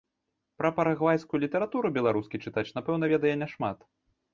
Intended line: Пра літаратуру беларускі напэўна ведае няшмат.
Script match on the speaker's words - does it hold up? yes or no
no